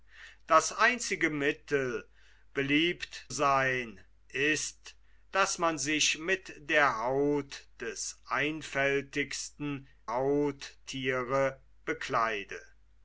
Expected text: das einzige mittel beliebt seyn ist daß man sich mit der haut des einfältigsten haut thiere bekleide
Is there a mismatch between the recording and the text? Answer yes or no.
no